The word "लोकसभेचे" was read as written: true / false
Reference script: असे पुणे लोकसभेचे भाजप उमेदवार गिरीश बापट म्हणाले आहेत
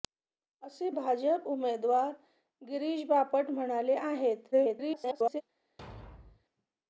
false